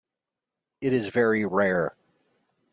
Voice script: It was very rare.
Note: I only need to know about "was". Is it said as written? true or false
false